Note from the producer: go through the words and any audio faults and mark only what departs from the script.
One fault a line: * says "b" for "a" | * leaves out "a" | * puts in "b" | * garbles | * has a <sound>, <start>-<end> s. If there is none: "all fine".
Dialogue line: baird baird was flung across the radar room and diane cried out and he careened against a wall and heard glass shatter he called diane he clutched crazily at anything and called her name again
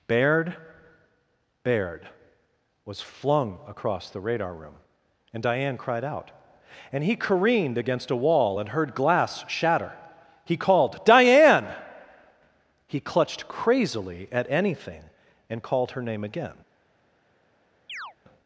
* has a chirp, 17.9-18.1 s